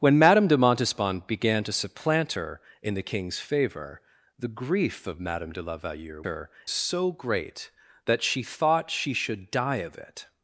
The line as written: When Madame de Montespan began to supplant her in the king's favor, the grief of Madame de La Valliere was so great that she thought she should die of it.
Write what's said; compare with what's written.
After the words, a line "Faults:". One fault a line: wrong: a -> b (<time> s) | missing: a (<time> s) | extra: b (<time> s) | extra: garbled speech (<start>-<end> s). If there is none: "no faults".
When Madame de Montespan began to supplant her in the king's favor, the grief of Madame de La Valliere her so great that she thought she should die of it.
Faults:
wrong: was -> her (6.2 s)